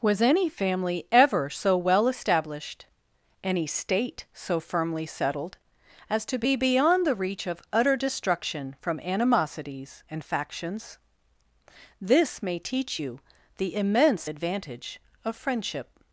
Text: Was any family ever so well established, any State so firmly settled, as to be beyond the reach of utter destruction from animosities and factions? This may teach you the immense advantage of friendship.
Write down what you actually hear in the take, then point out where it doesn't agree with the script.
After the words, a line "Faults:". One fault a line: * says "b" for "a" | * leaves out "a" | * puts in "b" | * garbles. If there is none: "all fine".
Was any family ever so well established, any State so firmly settled, as to be beyond the reach of utter destruction from animosities and factions? This may teach you the immense advantage of friendship.
Faults:
all fine